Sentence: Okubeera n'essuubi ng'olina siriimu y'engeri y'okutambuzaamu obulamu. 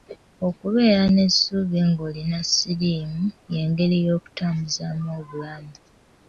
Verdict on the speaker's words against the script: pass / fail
pass